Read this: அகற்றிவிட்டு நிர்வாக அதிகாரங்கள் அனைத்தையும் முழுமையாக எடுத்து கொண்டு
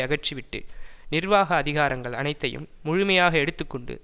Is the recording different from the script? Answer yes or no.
no